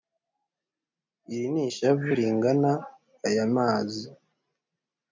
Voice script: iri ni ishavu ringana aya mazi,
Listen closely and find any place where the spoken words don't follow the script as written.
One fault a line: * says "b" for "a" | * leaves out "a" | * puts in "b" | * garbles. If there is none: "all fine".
all fine